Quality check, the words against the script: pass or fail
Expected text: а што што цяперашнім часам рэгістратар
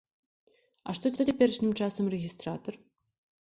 pass